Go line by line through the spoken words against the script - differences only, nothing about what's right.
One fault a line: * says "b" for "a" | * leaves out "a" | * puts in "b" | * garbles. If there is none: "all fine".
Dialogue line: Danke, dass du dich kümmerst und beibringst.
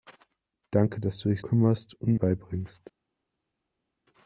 all fine